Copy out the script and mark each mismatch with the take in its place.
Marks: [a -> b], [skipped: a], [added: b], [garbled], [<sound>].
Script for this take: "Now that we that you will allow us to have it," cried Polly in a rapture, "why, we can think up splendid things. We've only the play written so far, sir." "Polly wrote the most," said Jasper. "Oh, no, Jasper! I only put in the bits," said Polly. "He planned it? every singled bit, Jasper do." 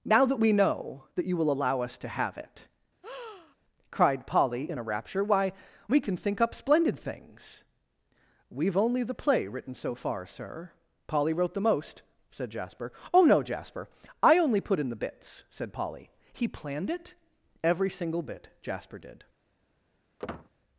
"Now that we [added: know] that you will allow us to have it," [breath] cried Polly in a rapture, "why, we can think up splendid things. We've only the play written so far, sir." "Polly wrote the most," said Jasper. "Oh, no, Jasper! I only put in the bits," said Polly. "He planned it? every [singled -> single] bit, Jasper [do." -> did] [squeak]